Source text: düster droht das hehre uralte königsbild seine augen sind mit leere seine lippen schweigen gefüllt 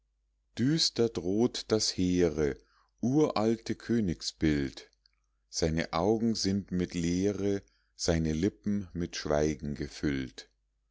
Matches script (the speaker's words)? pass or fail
fail